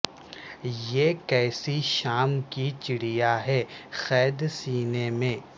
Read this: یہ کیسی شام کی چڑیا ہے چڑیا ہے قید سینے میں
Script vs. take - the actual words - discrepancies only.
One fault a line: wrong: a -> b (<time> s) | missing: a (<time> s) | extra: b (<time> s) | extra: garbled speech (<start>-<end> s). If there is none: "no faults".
missing: چڑیا ہے (3.6 s)